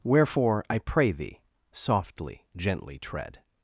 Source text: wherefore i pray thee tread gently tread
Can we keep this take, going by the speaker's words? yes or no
no